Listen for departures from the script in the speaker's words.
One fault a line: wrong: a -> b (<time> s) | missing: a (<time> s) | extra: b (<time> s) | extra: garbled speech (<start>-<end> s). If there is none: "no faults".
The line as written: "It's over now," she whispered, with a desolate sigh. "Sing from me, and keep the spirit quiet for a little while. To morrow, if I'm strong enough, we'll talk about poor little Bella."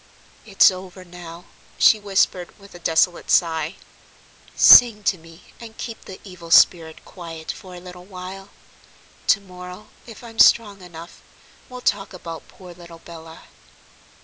wrong: from -> to (5.0 s)
extra: evil (6.2 s)